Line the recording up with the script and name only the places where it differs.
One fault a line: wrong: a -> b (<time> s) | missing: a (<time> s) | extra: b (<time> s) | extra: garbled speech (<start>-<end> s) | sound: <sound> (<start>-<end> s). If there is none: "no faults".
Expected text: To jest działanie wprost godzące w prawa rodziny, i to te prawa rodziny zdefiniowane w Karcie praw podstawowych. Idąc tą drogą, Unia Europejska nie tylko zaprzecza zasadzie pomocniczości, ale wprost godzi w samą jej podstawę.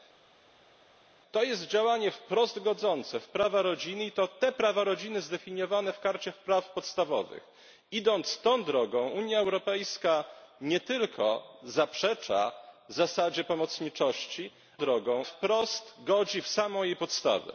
wrong: ale -> drogą (14.8 s)